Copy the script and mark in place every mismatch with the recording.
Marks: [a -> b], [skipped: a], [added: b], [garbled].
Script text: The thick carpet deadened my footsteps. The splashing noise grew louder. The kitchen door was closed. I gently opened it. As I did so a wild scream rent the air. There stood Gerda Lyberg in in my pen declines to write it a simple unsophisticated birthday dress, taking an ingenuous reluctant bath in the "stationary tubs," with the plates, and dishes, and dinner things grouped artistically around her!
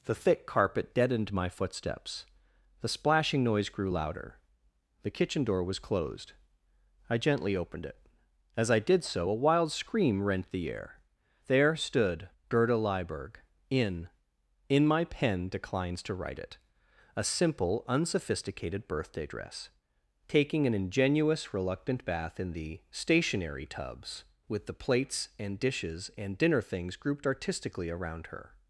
The thick carpet deadened my footsteps. The splashing noise grew louder. The kitchen door was closed. I gently opened it. As I did so a wild scream rent the air. There stood Gerda Lyberg in in my pen declines to write it a simple unsophisticated birthday dress, taking an ingenuous reluctant bath in the "stationary tubs," with the plates, and dishes, and dinner things grouped artistically around her!